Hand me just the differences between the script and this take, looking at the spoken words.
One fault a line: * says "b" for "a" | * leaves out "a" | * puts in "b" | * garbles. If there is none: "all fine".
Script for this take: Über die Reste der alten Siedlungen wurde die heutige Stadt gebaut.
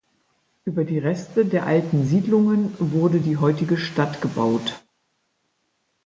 all fine